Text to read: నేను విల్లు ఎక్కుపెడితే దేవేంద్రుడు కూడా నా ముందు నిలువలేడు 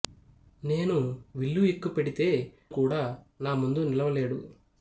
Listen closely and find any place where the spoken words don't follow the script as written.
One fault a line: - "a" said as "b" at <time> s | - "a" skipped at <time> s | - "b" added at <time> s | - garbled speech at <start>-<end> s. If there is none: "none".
- "దేవేంద్రుడు" skipped at 2.3 s